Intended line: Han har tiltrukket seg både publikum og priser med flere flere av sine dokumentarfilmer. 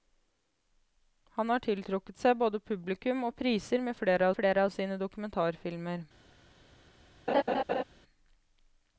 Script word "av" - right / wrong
right